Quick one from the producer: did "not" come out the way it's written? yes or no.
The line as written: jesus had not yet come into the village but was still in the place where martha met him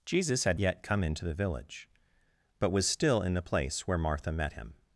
no